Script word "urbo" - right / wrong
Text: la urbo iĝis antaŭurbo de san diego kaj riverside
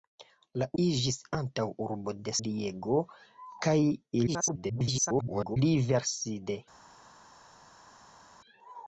wrong